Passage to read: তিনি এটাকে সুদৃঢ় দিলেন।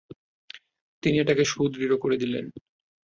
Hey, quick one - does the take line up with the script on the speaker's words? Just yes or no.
no